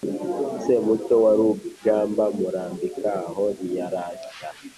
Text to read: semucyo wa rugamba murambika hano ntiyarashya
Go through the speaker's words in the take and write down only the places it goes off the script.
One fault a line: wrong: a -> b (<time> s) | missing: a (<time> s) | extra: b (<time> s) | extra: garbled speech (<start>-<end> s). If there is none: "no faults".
wrong: hano -> aho (3.3 s)